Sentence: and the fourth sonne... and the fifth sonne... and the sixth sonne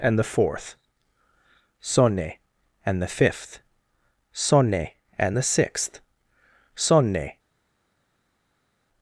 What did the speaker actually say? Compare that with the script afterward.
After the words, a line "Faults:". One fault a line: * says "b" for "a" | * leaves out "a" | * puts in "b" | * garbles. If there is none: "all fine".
and the fourth sonne... and the fifth sonne... and the sixth sonne
Faults:
all fine